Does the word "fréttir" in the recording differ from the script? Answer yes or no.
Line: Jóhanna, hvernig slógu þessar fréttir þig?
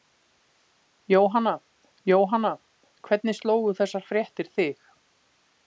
no